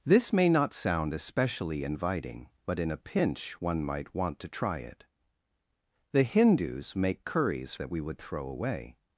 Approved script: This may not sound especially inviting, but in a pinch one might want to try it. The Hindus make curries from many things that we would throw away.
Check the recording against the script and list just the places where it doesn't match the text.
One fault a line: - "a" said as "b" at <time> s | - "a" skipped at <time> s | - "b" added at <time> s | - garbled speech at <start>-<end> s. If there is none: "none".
- "from many things" skipped at 7.7 s